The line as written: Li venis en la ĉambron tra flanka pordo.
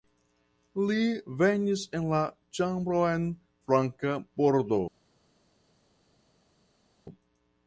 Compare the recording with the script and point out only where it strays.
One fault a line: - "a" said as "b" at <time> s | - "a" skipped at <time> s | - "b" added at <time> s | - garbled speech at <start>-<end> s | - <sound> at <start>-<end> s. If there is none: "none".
- "tra" skipped at 3.3 s